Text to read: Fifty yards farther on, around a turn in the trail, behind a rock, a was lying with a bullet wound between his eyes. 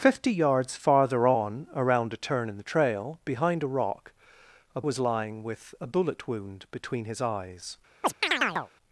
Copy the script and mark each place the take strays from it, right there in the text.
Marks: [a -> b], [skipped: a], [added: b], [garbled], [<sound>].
Fifty yards farther on, around a turn in the trail, behind a rock, a was lying with a bullet wound between his eyes. [chirp]